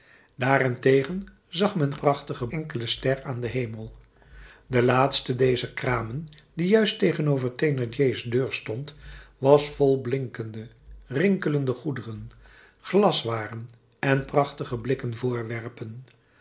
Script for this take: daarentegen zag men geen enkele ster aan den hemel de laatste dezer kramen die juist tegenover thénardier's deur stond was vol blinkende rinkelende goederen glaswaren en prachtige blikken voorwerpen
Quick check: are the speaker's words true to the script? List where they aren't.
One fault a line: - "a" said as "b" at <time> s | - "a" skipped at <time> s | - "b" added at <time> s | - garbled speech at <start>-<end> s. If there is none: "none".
- "geen" said as "prachtige" at 1.9 s